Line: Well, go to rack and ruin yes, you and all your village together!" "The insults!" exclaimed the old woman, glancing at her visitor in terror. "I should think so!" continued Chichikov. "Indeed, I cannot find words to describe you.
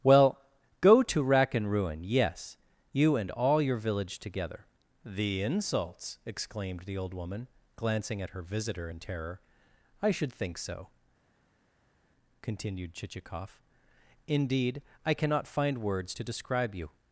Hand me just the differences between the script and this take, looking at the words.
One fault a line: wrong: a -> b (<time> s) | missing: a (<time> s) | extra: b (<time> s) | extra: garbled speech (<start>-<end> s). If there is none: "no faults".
no faults